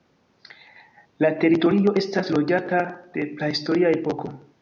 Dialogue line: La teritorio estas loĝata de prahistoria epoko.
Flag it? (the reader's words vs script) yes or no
no